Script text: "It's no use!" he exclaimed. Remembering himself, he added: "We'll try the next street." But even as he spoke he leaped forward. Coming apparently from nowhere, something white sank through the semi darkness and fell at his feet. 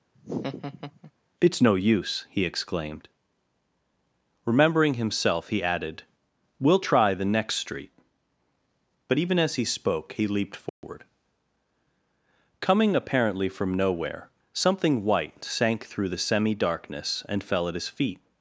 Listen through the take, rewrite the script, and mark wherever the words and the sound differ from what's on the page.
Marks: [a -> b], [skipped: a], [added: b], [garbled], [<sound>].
[laugh] "It's no use!" he exclaimed. Remembering himself, he added: "We'll try the next street." But even as he spoke he leaped forward. [dropout] Coming apparently from nowhere, something white sank through the semi darkness and fell at his feet.